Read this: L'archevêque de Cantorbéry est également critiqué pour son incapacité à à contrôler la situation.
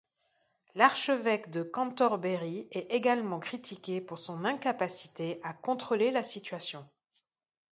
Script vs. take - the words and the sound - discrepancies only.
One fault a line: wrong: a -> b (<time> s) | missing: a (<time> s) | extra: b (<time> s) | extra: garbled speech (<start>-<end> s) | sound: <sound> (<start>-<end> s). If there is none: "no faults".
missing: à (5.5 s)